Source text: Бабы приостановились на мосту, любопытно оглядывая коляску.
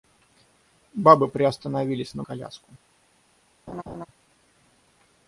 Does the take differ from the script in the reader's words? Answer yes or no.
yes